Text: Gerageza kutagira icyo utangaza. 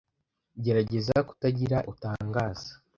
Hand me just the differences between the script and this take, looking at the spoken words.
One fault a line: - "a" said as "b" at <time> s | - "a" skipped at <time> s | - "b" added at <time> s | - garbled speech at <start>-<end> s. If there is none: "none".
- "icyo" skipped at 1.8 s